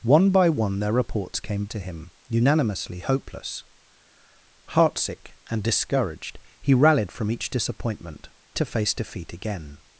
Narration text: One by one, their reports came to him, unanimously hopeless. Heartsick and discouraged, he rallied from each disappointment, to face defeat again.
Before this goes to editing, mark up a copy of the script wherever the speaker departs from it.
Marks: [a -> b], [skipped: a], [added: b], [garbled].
One by one, their reports came to him, unanimously hopeless. Heartsick and discouraged, he rallied from each disappointment, to face defeat again.